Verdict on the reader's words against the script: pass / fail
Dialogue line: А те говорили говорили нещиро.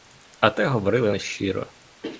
fail